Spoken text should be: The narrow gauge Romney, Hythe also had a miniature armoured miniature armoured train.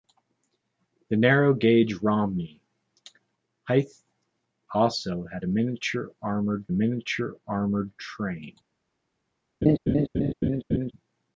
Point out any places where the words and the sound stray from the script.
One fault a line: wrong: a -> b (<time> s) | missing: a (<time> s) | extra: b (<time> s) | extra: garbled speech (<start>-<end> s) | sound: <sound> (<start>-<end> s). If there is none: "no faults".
sound: laugh (9.6-10.9 s)